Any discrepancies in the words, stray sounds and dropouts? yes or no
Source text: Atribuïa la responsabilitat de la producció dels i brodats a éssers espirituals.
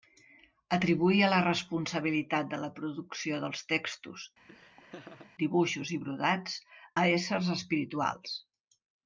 yes